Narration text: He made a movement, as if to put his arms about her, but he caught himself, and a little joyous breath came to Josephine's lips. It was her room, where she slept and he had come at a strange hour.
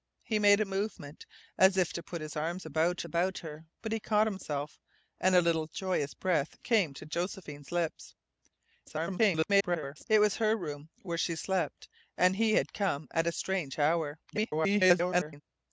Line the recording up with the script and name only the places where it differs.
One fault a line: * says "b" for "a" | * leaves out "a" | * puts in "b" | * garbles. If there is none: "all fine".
* puts in "about"
* garbles
* garbles